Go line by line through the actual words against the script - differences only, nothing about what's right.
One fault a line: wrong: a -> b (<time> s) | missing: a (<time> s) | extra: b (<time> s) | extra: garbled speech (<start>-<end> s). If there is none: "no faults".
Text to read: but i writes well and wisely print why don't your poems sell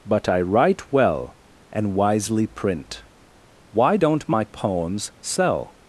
wrong: writes -> write (0.4 s)
wrong: your -> my (4.3 s)